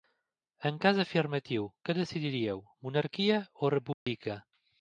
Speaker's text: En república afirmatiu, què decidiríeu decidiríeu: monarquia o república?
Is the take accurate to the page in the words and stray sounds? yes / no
no